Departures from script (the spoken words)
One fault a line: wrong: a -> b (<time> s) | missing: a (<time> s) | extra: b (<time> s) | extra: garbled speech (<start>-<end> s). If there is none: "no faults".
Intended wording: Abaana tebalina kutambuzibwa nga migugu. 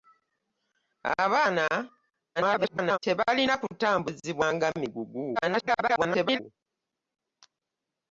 extra: garbled speech (2.4-3.0 s)
extra: garbled speech (5.3-6.4 s)